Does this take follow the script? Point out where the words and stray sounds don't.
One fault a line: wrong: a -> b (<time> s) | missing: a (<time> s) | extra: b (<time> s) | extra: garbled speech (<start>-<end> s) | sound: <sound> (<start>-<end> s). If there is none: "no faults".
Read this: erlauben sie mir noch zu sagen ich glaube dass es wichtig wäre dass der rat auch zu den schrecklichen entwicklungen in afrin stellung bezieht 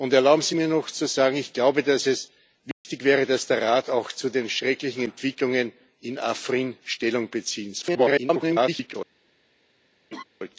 sound: dropout (2.7-2.8 s)
extra: garbled speech (7.8-9.0 s)
sound: laugh (10.1-10.2 s)